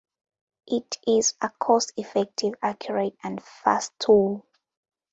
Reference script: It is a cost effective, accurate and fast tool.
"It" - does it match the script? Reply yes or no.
yes